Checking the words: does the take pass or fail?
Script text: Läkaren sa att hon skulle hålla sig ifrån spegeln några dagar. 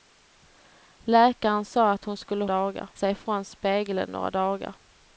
fail